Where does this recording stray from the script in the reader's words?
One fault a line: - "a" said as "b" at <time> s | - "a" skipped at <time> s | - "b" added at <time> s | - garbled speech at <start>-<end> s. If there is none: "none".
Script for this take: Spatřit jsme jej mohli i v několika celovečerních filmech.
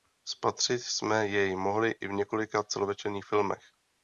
none